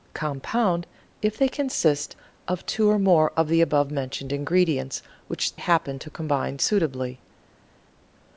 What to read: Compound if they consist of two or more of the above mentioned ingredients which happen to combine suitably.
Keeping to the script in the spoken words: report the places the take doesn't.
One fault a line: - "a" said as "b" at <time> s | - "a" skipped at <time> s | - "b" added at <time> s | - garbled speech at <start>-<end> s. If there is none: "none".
none